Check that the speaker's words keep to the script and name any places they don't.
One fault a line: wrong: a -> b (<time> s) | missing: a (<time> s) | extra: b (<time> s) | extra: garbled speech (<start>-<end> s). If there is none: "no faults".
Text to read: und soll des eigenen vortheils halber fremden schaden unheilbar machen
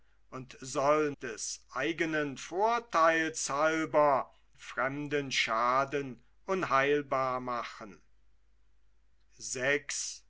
no faults